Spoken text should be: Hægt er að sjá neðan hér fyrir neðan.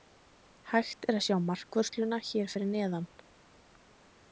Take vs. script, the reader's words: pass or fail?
fail